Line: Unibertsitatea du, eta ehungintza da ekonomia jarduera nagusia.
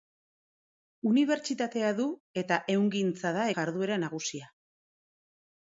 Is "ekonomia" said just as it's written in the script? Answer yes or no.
no